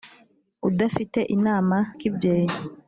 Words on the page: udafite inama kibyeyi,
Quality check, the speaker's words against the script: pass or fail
pass